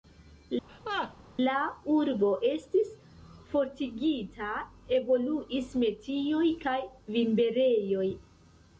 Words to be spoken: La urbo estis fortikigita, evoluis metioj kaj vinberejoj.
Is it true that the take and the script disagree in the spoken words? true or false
false